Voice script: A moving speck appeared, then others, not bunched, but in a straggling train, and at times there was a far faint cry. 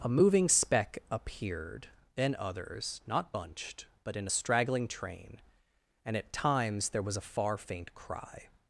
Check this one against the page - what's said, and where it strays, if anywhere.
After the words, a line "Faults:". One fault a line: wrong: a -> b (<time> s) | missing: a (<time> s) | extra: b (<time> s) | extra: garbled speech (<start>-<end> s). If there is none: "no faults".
A moving speck appeared, then others, not bunched, but in a straggling train, and at times there was a far faint cry.
Faults:
no faults